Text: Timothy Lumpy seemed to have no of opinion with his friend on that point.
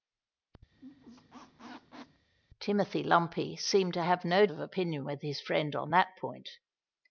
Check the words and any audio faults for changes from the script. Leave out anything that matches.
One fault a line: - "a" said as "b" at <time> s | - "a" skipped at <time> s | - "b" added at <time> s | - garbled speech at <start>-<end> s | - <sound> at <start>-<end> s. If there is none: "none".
- squeak at 0.7-2.3 s